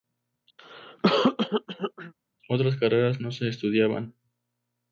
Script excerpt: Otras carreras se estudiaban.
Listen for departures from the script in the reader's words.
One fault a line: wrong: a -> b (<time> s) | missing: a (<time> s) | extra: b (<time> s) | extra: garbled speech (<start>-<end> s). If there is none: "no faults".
extra: no (3.2 s)